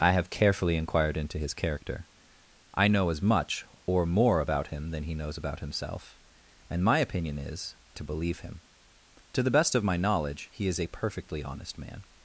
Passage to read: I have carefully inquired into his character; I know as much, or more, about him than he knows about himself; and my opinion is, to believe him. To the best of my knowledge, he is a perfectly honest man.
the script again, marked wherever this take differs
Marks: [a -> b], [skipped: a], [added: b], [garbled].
I have carefully inquired into his character; I know as much, or more, about him than he knows about himself; and my opinion is, to believe him. To the best of my knowledge, he is a perfectly honest man.